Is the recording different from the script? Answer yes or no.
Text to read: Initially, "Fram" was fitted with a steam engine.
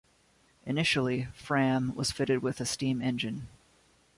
no